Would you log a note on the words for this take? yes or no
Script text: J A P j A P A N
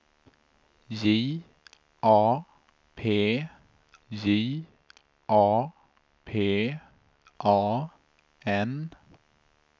no